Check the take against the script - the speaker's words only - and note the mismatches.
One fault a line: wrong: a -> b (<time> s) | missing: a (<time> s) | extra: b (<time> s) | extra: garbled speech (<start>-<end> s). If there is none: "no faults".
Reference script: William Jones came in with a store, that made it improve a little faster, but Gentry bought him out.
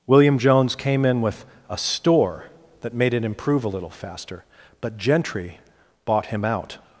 no faults